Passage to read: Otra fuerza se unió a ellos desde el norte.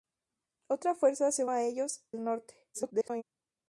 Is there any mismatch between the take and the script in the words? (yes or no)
yes